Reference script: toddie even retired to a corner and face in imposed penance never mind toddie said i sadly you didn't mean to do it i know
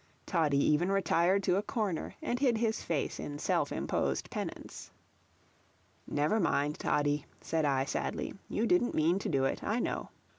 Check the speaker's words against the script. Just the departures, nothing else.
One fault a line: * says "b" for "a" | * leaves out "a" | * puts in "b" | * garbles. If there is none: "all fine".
* puts in "hid his"
* puts in "self"